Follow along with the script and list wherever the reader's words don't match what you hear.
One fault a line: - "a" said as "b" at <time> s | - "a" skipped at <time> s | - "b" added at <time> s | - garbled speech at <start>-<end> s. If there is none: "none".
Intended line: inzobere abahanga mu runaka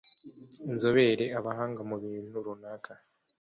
- "bintu" added at 2.0 s